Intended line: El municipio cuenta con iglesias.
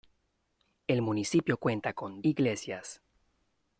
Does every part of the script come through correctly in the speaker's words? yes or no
yes